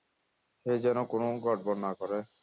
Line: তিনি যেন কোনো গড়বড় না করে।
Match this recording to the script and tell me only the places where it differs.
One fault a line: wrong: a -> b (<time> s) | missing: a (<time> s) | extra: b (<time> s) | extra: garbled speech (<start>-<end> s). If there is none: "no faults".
wrong: তিনি -> সে (0.6 s)